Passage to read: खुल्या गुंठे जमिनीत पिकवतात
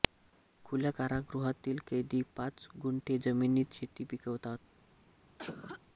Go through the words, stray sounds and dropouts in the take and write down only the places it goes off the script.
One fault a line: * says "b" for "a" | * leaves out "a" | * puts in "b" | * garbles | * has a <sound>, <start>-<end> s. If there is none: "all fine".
* puts in "कारागृहातील कैदी पाच"
* puts in "शेती"
* has a cough, 5.4-5.8 s